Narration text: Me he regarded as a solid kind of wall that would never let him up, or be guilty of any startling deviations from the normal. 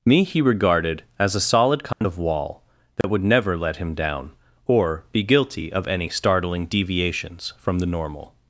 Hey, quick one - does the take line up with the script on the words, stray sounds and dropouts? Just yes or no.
no